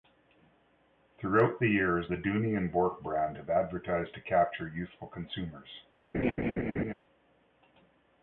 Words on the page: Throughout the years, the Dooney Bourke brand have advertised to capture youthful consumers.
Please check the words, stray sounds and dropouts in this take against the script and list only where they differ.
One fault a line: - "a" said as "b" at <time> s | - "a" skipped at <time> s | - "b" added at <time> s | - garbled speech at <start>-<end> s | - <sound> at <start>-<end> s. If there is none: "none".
- "and" added at 2.5 s
- laugh at 6.1-6.9 s